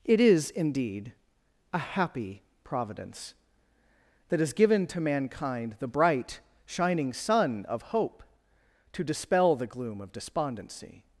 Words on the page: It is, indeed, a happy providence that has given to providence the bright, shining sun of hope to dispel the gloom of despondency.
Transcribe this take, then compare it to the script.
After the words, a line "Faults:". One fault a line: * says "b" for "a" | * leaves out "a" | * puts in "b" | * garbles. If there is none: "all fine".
It is, indeed, a happy providence that has given to mankind the bright, shining sun of hope to dispel the gloom of despondency.
Faults:
* says "mankind" for "providence"